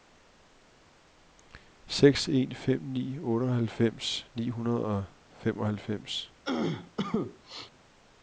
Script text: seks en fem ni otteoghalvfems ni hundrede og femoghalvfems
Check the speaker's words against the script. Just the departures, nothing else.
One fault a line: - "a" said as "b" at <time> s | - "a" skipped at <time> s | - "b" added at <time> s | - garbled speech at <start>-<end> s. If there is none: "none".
none